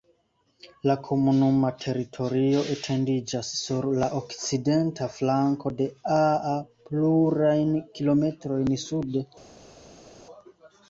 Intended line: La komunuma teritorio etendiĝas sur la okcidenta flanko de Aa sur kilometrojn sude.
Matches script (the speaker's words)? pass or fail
fail